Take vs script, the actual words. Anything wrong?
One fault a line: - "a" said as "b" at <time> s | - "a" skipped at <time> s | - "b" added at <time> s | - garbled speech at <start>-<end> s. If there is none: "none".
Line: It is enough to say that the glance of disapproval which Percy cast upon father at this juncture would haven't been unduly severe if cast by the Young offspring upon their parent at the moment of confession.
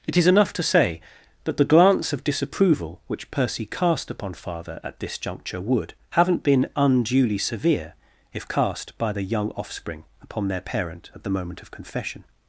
none